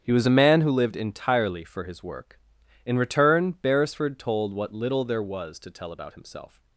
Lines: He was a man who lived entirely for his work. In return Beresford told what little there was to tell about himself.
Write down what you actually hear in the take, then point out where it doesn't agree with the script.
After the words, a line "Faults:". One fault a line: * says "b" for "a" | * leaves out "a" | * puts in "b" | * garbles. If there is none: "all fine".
He was a man who lived entirely for his work. In return Beresford told what little there was to tell about himself.
Faults:
all fine